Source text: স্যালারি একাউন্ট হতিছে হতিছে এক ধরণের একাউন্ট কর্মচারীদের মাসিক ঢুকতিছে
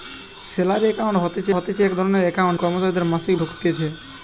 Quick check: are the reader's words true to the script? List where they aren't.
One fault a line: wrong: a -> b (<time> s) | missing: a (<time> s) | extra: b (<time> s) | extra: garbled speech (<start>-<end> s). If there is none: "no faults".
no faults